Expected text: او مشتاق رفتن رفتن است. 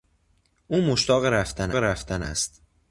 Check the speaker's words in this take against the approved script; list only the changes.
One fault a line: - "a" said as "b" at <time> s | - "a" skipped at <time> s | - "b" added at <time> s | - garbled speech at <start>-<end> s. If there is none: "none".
none